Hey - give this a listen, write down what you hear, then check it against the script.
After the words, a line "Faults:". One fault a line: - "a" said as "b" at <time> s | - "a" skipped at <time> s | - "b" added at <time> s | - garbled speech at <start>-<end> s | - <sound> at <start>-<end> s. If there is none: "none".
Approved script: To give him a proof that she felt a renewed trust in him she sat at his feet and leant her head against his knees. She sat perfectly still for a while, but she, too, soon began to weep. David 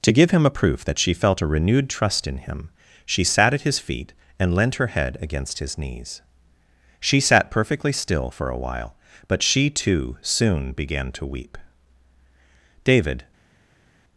To give him a proof that she felt a renewed trust in him she sat at his feet and leant her head against his knees. She sat perfectly still for a while, but she, too, soon began to weep. David
Faults:
none